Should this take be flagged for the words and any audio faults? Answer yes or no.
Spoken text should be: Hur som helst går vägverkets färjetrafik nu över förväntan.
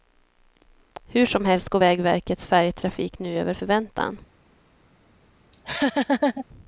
yes